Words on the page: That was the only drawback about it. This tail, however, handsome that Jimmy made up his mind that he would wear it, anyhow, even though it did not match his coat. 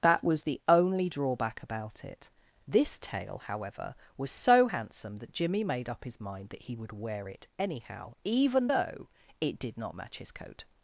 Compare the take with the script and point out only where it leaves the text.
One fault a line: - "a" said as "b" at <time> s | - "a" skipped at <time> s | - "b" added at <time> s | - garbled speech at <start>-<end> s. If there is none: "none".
- "was so" added at 4.2 s